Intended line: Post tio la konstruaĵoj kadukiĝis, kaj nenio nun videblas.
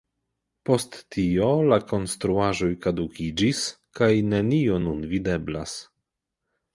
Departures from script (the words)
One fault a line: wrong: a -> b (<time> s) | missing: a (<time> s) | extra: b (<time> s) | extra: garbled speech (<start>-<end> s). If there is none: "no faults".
no faults